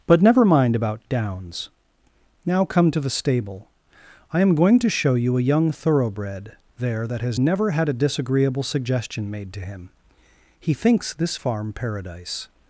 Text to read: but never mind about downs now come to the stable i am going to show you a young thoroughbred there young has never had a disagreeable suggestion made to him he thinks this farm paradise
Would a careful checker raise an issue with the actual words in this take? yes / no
yes